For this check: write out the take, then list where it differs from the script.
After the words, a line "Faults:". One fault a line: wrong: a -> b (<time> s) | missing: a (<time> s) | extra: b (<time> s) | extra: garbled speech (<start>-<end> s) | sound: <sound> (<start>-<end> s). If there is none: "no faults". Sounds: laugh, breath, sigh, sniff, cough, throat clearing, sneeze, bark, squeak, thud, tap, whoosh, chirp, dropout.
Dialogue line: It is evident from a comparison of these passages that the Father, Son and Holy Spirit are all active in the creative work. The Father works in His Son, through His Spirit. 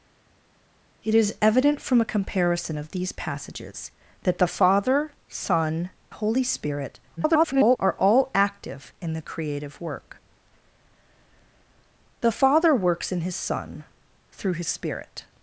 It is evident from a comparison of these passages that the Father, Son Holy Spirit [garbled] are all active in the creative work. The Father works in His Son, through His Spirit.
Faults:
missing: and (5.9 s)
extra: garbled speech (7.2-7.8 s)